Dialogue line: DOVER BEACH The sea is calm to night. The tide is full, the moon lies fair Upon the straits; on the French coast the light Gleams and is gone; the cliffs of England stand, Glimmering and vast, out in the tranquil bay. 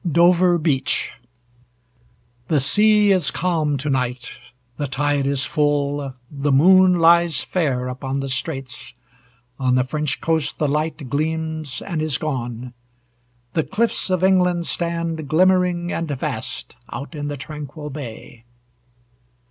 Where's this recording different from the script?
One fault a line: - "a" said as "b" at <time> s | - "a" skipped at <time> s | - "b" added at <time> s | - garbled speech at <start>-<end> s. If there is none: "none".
none